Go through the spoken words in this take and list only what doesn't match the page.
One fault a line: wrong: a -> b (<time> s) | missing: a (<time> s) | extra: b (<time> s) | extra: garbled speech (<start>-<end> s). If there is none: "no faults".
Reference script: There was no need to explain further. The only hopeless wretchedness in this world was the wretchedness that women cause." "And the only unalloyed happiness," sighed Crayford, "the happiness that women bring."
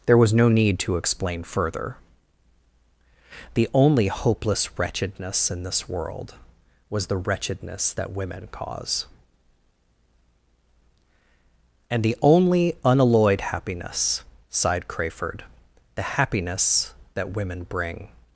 no faults